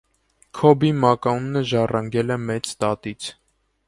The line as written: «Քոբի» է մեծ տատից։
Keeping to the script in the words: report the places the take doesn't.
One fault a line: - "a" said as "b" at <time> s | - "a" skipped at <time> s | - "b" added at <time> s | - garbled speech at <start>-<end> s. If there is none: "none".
- "մականունը ժառանգել" added at 1.0 s